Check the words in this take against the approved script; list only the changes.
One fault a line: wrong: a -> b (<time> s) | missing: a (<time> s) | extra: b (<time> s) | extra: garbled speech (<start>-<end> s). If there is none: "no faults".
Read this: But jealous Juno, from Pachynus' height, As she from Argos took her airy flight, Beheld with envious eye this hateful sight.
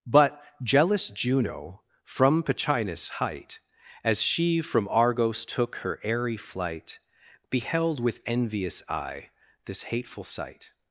no faults